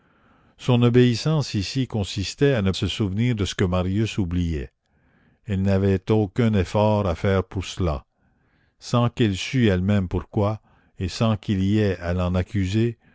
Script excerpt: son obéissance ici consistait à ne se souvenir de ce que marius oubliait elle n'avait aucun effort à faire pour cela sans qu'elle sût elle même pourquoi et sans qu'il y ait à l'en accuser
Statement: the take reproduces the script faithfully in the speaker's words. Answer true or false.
true